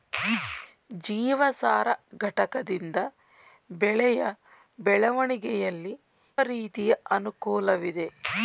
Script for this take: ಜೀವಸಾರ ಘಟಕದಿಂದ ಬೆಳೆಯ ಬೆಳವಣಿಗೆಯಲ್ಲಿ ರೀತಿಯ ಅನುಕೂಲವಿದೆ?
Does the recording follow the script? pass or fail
pass